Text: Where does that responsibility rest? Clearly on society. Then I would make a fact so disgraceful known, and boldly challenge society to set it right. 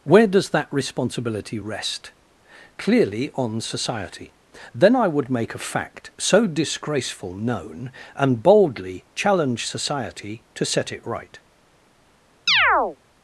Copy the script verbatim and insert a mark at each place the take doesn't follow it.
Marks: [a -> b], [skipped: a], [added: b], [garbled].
Where does that responsibility rest? Clearly on society. Then I would make a fact so disgraceful known, and boldly challenge society to set it right.